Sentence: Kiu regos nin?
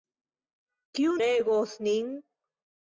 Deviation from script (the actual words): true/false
false